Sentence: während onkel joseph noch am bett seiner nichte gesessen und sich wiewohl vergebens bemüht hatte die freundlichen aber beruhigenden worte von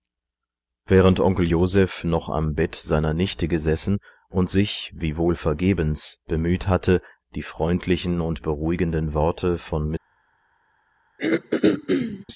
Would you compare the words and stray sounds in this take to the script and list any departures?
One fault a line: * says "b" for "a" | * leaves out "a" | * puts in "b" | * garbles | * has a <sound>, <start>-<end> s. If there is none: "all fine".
* says "und" for "aber"
* has a throat clearing, 11.2-12.3 s